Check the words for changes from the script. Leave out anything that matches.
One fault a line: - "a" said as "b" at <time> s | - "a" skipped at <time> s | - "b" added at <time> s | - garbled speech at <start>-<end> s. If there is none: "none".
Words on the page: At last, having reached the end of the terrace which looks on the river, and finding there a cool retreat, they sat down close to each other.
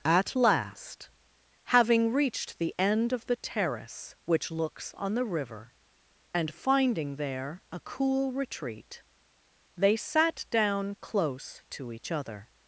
none